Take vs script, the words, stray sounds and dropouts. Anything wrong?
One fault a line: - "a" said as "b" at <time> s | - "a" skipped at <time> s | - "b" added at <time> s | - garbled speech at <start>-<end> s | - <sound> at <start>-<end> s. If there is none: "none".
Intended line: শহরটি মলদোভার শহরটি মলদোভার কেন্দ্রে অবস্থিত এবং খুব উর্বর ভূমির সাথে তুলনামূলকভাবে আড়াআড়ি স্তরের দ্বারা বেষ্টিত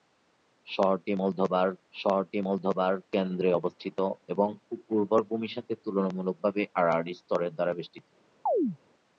- chirp at 8.5-8.8 s